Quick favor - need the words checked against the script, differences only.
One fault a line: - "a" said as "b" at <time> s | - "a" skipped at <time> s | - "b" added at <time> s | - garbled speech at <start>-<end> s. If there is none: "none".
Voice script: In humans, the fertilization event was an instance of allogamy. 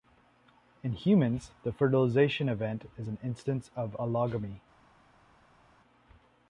- "was" said as "is" at 3.0 s